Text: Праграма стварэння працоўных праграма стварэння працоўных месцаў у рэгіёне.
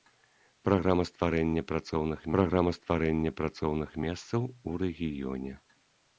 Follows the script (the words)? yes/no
yes